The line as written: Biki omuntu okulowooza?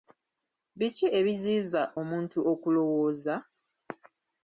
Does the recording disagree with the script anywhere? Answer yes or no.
yes